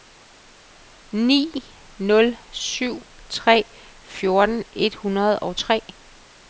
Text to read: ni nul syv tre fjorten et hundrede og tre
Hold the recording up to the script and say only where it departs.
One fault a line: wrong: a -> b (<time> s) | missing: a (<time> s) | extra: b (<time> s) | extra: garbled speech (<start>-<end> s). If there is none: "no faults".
no faults